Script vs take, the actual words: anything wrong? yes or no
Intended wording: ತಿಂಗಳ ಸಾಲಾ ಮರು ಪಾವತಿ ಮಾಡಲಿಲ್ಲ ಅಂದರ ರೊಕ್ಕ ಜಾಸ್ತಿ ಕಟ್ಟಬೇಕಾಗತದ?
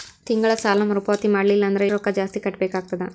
no